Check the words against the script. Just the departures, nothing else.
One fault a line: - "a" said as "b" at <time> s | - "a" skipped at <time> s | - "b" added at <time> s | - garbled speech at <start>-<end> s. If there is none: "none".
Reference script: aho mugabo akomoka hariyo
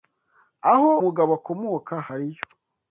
none